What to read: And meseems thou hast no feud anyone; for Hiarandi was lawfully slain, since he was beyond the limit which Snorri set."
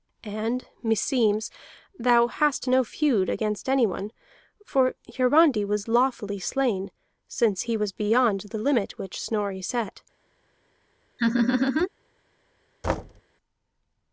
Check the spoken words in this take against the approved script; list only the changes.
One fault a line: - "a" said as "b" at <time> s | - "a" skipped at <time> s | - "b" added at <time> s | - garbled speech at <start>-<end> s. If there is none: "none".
- "against" added at 3.3 s